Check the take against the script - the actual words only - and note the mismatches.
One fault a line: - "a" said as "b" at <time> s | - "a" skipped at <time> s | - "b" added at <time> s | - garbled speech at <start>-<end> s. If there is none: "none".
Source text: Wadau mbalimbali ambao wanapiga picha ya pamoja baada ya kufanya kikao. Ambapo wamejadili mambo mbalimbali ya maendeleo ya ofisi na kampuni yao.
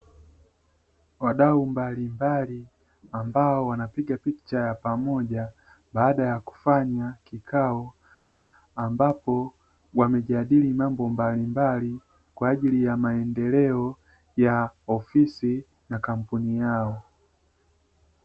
- "kwa ajili" added at 12.3 s